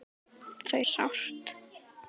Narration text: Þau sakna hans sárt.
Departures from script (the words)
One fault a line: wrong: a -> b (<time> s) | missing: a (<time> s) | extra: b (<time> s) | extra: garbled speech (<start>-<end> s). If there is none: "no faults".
missing: sakna hans (0.8 s)